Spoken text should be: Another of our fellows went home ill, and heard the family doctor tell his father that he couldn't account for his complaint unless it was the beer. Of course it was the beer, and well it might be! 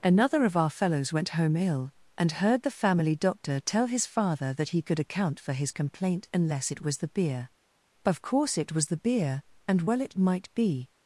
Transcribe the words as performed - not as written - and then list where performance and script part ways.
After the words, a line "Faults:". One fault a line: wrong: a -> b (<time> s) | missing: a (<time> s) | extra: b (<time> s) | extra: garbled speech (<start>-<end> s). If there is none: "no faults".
Another of our fellows went home ill, and heard the family doctor tell his father that he could account for his complaint unless it was the beer. Of course it was the beer, and well it might be!
Faults:
wrong: couldn't -> could (4.8 s)